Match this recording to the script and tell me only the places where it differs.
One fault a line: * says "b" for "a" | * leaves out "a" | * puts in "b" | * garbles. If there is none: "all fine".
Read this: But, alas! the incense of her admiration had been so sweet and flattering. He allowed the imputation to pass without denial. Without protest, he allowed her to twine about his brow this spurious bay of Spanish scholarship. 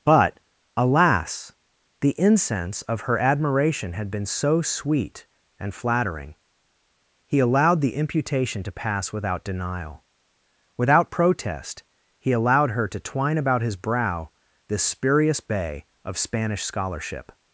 all fine